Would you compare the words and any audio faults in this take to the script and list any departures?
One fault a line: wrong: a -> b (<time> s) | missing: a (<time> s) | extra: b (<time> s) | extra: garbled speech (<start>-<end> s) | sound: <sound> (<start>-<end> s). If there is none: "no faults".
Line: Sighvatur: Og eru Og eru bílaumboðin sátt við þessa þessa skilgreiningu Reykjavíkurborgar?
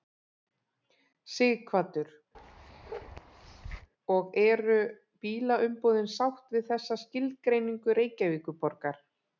sound: bark (2.3-3.9 s)
missing: Og eru (4.8 s)
missing: þessa (7.0 s)